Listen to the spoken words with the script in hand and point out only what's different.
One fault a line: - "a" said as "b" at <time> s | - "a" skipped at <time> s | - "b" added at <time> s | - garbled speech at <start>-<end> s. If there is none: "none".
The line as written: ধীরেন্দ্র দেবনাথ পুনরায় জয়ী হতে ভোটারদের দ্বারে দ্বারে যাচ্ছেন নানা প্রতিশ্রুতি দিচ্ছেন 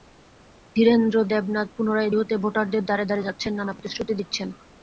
- "জয়ী" skipped at 2.1 s